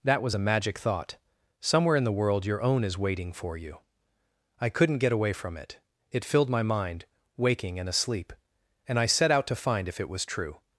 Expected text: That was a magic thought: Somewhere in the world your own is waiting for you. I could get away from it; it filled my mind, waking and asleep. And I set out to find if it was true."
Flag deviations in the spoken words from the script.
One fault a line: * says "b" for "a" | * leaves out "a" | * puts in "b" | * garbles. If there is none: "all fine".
* says "couldn't" for "could"